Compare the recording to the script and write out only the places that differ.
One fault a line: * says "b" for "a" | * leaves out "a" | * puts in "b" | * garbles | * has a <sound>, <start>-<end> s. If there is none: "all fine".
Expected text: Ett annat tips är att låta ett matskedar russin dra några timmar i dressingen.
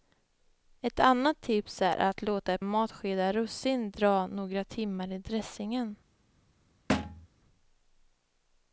* has a thud, 6.9-7.3 s